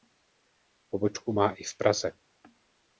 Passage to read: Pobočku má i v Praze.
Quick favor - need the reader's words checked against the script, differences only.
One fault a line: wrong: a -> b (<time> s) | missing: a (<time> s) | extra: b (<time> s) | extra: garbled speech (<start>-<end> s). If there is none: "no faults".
no faults